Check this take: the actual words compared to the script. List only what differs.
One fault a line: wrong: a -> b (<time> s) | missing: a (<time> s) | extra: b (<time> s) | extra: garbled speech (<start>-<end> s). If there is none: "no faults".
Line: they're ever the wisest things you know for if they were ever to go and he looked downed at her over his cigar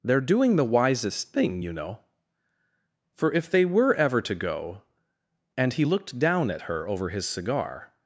wrong: ever -> doing (0.2 s)
wrong: things -> thing (1.3 s)
wrong: downed -> down (6.2 s)